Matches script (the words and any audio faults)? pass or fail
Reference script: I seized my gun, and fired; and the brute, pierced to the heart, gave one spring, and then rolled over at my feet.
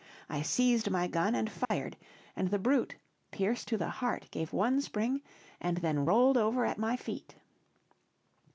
fail